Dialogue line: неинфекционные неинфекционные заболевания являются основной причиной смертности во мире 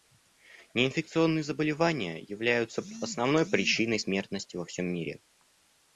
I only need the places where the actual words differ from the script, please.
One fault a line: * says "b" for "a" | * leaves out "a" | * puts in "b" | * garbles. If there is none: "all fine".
* leaves out "неинфекционные"
* puts in "всем"